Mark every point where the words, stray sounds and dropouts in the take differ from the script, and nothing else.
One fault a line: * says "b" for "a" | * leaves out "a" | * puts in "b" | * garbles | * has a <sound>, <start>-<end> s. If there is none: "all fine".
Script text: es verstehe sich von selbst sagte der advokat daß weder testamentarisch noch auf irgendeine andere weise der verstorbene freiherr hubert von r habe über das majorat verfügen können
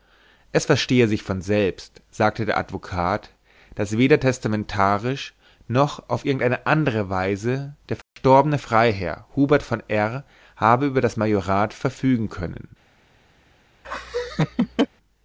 * has a dropout, 8.0-8.2 s
* has a laugh, 13.8-14.9 s